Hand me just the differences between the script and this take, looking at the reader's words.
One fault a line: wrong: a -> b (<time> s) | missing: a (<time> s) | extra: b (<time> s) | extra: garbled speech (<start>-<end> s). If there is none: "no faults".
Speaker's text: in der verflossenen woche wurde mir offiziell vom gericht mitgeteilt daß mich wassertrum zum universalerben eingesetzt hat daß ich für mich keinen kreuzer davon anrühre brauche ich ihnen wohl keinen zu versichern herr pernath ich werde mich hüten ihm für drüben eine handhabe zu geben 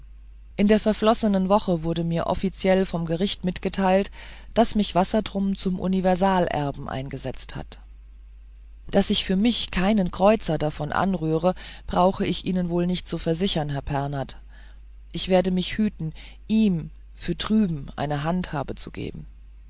wrong: keinen -> nicht (12.9 s)